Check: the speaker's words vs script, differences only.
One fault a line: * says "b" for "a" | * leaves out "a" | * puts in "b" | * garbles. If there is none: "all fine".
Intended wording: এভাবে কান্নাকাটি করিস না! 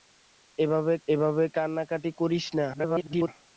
* puts in "এভাবে"
* garbles